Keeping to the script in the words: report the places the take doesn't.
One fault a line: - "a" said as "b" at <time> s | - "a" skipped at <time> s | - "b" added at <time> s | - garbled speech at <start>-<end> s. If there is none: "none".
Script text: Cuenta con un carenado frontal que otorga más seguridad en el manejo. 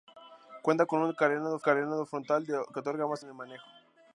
- "carenado" added at 1.6 s
- "seguridad" skipped at 3.2 s